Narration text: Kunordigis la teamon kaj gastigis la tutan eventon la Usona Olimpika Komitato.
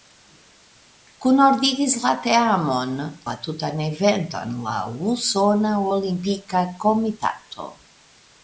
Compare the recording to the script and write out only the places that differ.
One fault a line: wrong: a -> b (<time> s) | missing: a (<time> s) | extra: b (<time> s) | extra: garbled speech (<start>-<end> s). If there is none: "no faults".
missing: kaj gastigis (3.0 s)